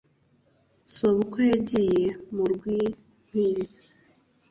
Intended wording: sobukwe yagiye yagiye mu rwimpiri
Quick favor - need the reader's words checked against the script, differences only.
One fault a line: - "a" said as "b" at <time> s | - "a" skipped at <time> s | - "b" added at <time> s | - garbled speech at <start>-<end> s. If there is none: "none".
- "yagiye" skipped at 2.1 s